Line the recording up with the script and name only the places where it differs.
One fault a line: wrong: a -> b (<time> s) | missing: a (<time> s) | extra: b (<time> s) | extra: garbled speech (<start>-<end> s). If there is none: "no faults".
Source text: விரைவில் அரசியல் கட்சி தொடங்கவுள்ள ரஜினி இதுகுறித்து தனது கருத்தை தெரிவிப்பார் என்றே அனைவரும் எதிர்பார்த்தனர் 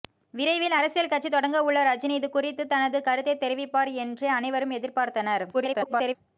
extra: garbled speech (5.5-6.2 s)